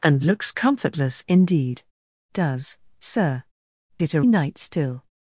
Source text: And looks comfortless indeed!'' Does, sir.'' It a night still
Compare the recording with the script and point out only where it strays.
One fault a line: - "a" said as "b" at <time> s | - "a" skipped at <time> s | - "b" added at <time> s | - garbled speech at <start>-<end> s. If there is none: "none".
none